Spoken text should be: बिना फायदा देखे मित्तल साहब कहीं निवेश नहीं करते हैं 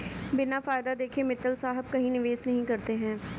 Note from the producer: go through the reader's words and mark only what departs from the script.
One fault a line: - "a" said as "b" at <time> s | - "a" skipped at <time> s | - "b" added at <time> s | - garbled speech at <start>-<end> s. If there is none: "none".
none